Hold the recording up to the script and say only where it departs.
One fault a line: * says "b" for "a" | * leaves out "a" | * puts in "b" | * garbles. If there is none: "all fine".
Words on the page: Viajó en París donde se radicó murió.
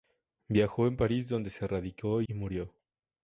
all fine